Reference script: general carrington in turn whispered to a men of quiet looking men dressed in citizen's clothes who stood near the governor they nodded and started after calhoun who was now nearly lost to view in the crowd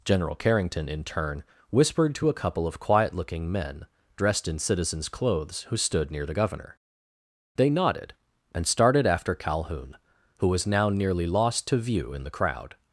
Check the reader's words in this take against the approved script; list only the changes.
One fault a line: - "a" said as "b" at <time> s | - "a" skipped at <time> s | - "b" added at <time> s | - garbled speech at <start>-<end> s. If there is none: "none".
- "men" said as "couple" at 2.3 s